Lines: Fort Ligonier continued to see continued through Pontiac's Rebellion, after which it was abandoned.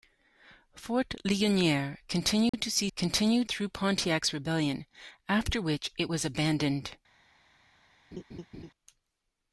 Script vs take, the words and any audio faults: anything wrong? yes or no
yes